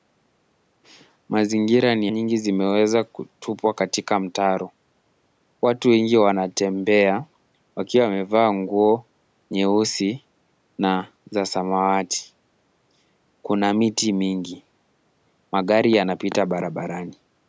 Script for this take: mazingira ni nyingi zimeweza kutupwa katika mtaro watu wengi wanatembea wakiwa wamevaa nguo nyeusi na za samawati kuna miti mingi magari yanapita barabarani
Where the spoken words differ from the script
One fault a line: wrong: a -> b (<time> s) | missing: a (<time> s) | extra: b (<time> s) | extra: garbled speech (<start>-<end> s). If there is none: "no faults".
no faults